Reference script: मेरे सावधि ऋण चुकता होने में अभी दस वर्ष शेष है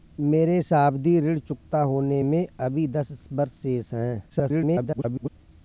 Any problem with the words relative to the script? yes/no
yes